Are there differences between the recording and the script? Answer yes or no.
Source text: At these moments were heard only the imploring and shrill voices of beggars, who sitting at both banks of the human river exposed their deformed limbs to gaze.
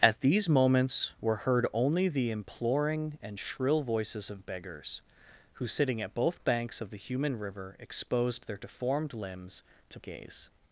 no